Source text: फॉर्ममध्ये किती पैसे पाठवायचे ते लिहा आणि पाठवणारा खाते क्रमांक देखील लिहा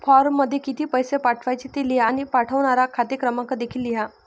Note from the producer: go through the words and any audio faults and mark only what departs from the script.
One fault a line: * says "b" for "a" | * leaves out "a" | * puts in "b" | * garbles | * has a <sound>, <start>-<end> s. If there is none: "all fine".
all fine